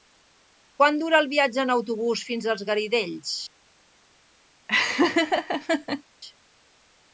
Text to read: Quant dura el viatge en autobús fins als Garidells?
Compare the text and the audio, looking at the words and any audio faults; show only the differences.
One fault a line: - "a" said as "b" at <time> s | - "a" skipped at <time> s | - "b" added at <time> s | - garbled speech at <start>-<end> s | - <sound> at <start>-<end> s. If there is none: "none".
- laugh at 4.7-6.0 s